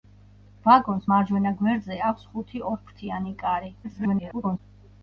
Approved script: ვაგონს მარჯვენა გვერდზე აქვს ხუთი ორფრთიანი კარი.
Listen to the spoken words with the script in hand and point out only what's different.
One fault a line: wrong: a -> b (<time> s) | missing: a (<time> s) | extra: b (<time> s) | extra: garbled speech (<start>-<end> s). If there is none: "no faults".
extra: garbled speech (3.8-4.6 s)